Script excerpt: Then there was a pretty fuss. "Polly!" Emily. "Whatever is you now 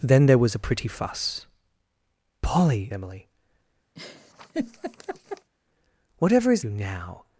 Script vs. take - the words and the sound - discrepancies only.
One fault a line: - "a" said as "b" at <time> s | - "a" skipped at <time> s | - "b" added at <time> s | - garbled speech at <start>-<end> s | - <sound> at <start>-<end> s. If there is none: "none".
- laugh at 4.0-5.5 s